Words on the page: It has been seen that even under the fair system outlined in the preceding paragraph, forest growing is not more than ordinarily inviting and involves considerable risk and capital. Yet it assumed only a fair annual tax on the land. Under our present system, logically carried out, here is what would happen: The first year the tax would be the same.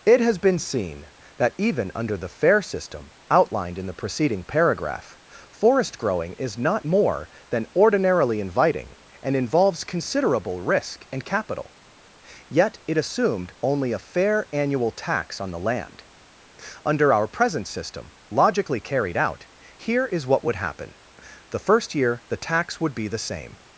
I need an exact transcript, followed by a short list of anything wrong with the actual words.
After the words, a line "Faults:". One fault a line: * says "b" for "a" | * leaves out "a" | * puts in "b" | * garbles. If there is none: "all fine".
It has been seen that even under the fair system outlined in the preceding paragraph, forest growing is not more than ordinarily inviting and involves considerable risk and capital. Yet it assumed only a fair annual tax on the land. Under our present system, logically carried out, here is what would happen: The first year the tax would be the same.
Faults:
all fine